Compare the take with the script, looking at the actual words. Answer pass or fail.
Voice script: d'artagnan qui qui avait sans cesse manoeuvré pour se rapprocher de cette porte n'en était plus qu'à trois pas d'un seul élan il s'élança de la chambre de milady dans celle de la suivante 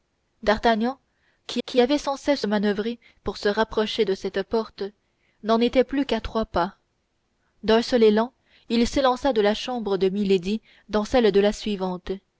pass